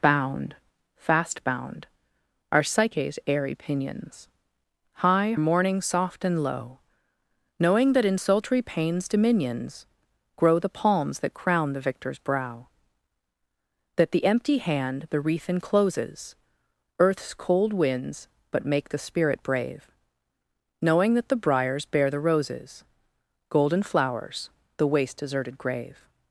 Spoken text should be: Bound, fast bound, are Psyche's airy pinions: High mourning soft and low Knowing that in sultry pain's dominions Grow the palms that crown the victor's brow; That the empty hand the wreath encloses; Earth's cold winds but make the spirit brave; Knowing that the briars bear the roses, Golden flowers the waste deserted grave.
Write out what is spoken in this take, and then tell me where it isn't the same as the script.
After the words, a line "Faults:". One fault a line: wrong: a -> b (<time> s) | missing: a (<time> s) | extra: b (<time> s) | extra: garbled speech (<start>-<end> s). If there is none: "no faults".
Bound, fast bound, are Psyche's airy pinions: High mourning soft and low Knowing that in sultry pain's dominions Grow the palms that crown the victor's brow; That the empty hand the wreath encloses; Earth's cold winds but make the spirit brave; Knowing that the briars bear the roses, Golden flowers the waste deserted grave.
Faults:
no faults